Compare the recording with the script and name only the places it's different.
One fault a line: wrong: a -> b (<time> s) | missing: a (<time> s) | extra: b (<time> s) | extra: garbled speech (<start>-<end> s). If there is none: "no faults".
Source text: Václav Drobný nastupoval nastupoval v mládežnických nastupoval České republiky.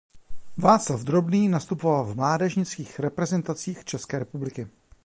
missing: nastupoval (2.0 s)
wrong: nastupoval -> reprezentacích (3.0 s)